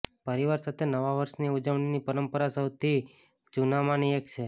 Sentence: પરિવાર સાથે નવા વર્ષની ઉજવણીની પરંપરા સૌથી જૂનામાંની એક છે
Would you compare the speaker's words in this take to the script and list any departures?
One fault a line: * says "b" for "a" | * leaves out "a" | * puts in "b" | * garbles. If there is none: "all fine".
all fine